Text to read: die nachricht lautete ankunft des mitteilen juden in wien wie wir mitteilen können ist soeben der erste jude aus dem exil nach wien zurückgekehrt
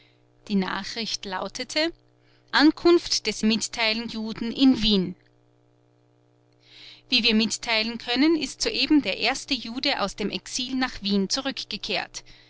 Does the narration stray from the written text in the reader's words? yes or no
no